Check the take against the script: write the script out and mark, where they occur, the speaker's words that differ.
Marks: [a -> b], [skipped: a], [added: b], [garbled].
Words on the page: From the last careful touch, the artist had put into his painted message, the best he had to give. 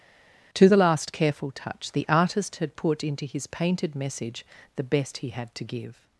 [From -> To] the last careful touch, the artist had put into his painted message, the best he had to give.